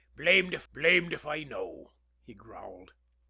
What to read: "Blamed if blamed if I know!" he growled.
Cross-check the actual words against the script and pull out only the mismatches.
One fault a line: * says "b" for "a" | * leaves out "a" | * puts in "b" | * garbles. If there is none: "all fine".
all fine